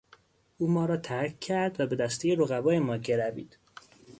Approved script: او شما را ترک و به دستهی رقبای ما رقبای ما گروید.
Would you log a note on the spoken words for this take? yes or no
yes